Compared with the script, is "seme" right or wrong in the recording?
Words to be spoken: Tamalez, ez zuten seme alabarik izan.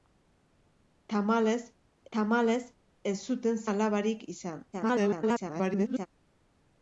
wrong